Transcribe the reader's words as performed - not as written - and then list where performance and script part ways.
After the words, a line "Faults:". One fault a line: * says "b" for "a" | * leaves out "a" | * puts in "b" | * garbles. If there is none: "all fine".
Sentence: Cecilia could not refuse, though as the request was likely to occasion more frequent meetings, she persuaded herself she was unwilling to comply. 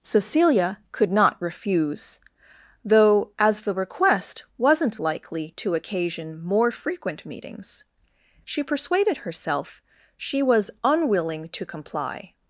Cecilia could not refuse, though as the request wasn't likely to occasion more frequent meetings, she persuaded herself she was unwilling to comply.
Faults:
* says "wasn't" for "was"